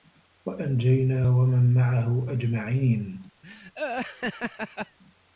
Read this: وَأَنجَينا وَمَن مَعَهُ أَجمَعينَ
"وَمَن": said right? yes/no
yes